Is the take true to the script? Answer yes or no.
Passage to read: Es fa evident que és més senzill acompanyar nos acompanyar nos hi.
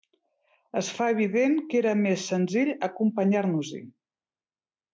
no